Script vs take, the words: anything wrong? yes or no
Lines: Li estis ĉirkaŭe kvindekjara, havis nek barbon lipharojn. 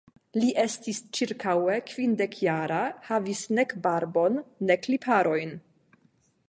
yes